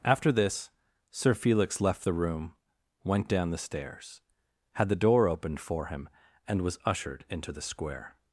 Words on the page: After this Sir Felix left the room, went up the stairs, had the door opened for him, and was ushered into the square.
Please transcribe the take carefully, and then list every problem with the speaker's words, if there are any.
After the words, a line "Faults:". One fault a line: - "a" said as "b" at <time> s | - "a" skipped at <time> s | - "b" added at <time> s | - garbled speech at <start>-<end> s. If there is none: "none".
After this Sir Felix left the room, went down the stairs, had the door opened for him, and was ushered into the square.
Faults:
- "up" said as "down" at 3.3 s